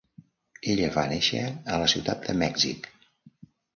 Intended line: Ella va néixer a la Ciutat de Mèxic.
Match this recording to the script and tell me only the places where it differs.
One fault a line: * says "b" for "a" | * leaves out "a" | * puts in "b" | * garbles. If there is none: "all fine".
all fine